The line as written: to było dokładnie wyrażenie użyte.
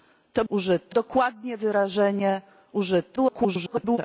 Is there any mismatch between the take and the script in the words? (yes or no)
yes